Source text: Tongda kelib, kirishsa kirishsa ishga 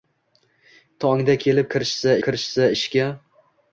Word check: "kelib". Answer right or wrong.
right